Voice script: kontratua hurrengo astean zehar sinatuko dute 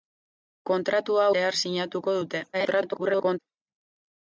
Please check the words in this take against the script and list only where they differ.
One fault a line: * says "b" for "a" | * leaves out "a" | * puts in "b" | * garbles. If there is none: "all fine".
* leaves out "hurrengo astean"
* garbles